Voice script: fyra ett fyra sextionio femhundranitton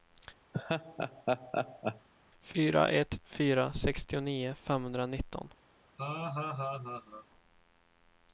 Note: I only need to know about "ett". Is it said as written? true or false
true